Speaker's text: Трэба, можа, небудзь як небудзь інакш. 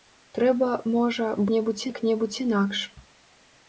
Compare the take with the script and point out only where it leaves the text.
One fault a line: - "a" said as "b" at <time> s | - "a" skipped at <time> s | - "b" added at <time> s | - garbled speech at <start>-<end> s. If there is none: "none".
none